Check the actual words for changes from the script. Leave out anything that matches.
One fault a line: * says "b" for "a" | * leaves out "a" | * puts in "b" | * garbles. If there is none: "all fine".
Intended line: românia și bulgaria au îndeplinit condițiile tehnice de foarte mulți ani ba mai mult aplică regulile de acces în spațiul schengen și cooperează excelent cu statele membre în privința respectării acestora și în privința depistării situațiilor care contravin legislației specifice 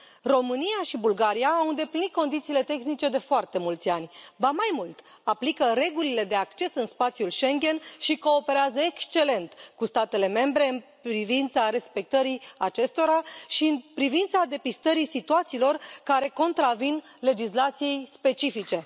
all fine